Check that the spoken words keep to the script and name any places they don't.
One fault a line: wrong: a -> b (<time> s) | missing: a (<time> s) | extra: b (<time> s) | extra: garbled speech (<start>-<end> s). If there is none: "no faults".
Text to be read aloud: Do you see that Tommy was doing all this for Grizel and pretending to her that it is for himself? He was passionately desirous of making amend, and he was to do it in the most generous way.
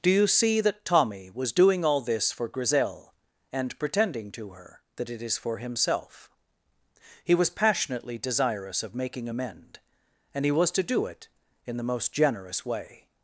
no faults